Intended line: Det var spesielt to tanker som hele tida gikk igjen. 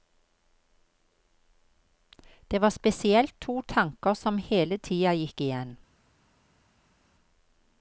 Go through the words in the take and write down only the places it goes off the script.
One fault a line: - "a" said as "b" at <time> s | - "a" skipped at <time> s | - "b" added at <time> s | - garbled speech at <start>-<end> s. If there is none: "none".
none